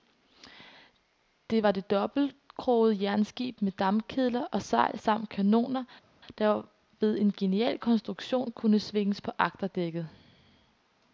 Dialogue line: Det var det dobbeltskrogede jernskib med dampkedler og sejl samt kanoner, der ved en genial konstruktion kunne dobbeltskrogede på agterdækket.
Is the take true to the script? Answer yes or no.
no